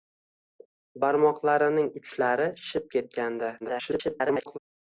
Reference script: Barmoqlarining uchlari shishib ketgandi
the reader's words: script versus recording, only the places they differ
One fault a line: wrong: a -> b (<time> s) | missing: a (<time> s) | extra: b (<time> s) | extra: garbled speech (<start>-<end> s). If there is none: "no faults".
extra: garbled speech (3.6-4.6 s)